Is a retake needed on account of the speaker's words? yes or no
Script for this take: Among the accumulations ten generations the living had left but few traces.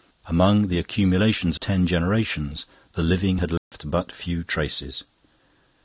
no